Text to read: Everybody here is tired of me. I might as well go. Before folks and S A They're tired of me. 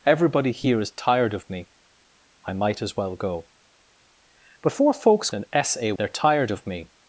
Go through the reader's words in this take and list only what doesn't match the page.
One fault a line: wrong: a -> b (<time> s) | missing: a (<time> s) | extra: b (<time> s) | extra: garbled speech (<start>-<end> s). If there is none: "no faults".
no faults